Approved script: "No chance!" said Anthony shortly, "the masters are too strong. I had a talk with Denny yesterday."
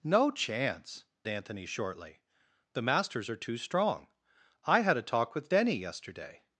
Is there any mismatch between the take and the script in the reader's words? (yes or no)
yes